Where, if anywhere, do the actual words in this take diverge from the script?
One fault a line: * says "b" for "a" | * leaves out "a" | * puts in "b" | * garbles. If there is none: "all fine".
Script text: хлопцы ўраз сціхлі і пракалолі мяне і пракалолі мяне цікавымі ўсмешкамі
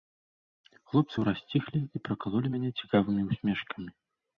* leaves out "і пракалолі мяне"